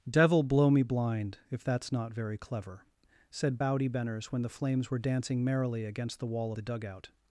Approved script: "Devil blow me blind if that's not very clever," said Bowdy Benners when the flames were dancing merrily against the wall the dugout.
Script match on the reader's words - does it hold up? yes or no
yes